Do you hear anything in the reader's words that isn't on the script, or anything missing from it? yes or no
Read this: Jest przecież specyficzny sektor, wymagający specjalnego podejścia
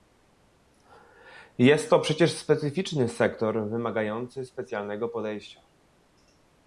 yes